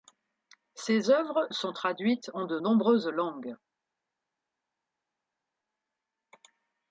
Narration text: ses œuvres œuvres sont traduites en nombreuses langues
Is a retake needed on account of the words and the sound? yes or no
yes